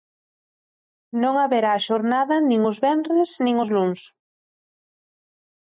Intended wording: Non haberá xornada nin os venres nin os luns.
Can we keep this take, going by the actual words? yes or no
yes